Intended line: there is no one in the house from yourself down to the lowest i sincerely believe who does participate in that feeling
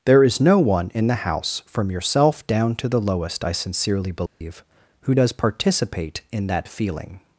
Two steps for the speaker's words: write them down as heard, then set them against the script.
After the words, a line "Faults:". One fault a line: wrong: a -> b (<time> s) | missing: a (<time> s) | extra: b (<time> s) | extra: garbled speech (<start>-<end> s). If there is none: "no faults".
there is no one in the house from yourself down to the lowest i sincerely believe who does participate in that feeling
Faults:
no faults